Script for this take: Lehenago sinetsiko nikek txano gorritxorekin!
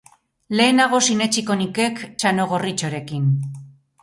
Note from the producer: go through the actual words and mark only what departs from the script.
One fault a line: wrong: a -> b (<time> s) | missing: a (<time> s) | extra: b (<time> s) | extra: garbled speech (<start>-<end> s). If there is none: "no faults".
no faults